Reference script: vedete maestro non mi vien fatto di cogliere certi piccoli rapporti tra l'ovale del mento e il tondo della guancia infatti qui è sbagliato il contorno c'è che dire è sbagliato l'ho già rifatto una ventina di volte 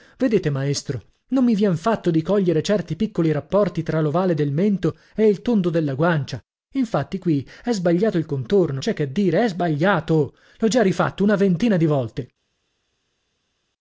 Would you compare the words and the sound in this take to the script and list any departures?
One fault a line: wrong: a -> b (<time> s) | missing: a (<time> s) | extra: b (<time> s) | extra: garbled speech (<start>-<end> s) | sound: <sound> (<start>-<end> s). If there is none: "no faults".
no faults